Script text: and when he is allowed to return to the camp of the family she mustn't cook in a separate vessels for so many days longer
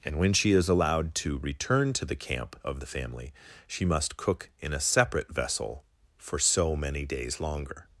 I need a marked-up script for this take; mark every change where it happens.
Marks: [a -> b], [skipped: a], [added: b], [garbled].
and when [he -> she] is allowed to return to the camp of the family she [mustn't -> must] cook in a separate [vessels -> vessel] for so many days longer